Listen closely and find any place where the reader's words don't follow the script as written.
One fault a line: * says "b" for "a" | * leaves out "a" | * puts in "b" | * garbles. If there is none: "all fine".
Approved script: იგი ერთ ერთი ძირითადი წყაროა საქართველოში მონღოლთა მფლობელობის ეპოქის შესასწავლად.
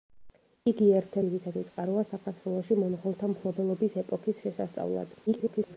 * leaves out "ერთი"
* garbles